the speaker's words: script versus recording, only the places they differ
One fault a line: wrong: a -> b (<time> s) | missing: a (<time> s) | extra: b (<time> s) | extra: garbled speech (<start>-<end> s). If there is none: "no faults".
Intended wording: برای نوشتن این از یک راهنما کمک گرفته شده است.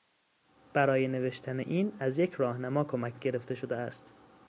no faults